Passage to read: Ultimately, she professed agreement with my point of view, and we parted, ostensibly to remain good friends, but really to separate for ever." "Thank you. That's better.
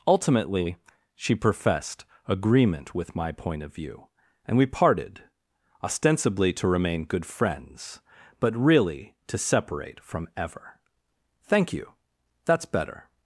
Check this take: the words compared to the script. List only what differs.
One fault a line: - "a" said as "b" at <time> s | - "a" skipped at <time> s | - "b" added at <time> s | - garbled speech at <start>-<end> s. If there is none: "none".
- "for" said as "from" at 10.0 s